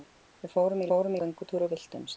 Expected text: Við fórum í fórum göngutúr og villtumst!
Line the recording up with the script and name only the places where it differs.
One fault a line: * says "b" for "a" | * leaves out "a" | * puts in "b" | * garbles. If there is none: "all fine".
all fine